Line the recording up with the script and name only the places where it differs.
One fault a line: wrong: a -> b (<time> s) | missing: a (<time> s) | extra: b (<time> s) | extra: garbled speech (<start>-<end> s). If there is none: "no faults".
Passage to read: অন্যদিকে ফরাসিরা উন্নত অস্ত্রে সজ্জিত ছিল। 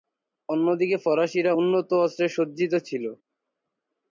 no faults